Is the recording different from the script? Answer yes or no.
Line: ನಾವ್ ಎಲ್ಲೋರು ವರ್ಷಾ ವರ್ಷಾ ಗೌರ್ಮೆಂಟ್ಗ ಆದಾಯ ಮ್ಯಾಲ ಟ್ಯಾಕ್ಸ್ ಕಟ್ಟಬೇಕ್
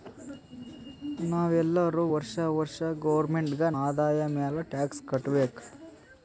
no